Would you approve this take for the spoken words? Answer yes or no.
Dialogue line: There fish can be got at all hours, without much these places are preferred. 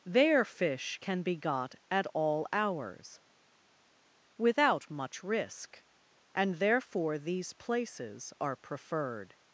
no